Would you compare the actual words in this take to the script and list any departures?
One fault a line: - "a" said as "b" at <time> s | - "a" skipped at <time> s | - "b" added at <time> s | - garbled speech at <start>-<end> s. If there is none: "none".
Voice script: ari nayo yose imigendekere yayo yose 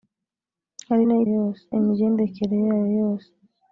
none